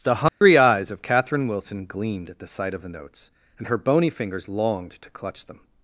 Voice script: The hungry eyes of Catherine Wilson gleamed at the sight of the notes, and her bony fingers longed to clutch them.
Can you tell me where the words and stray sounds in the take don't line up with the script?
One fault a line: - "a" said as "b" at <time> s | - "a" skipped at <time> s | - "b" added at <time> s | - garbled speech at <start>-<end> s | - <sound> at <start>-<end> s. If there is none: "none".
- dropout at 0.3-0.4 s